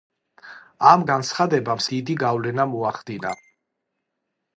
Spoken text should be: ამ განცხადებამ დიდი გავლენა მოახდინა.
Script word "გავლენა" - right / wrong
right